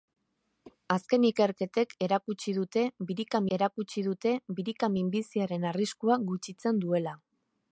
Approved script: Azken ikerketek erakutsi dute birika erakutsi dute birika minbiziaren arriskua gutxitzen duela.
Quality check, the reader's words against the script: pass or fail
pass